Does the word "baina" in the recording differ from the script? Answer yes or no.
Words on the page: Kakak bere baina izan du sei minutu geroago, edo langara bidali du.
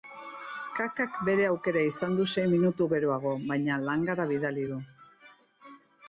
yes